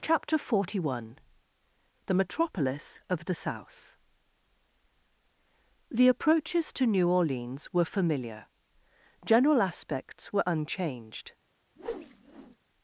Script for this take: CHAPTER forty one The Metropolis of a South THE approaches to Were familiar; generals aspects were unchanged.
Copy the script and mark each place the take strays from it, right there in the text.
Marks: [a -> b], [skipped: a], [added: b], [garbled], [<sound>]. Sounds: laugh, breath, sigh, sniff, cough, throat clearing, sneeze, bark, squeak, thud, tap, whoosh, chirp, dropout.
CHAPTER forty one The Metropolis of [a -> the] South THE approaches to [added: New Orleans] Were familiar; [generals -> general] aspects were unchanged. [whoosh]